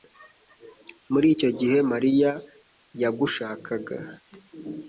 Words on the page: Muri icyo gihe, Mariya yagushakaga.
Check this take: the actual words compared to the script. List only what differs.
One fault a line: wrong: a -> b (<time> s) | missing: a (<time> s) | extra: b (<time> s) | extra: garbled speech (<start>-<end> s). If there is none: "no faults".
no faults